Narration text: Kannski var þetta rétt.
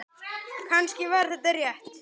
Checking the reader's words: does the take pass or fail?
pass